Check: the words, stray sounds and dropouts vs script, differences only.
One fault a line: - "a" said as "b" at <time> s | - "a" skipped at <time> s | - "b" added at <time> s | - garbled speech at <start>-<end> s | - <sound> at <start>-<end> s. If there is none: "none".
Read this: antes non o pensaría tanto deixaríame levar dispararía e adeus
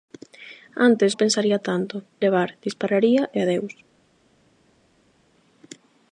- "non" skipped at 1.1 s
- "deixaríame" skipped at 1.9 s